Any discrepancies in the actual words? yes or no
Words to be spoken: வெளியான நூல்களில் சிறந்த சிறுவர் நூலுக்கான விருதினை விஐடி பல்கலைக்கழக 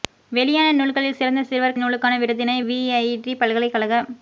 no